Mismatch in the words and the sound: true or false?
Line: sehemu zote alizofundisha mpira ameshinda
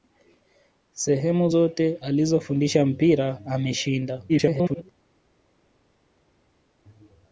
true